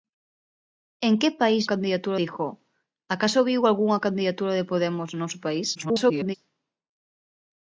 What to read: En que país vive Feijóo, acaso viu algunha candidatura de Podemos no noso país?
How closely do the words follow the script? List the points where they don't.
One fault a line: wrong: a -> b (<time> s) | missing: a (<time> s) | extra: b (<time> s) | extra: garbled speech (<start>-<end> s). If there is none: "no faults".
wrong: vive -> candidatura (1.7 s)
extra: garbled speech (5.7-6.3 s)